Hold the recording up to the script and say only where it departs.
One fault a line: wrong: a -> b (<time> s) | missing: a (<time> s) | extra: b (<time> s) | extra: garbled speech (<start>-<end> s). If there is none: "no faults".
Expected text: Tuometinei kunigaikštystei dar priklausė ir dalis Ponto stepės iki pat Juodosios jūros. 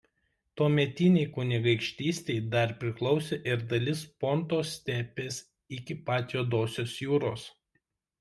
no faults